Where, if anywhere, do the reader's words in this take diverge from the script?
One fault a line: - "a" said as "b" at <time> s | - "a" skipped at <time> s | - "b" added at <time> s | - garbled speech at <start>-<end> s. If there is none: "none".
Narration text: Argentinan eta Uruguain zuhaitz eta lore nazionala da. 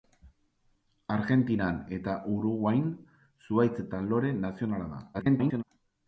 - garbled speech at 5.1-5.6 s